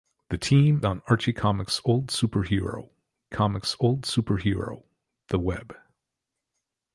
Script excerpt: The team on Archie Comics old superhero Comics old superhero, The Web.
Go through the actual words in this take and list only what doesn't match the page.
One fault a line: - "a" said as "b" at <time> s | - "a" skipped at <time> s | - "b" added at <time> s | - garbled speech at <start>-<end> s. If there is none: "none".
none